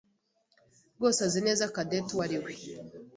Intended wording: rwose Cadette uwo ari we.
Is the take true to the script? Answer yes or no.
no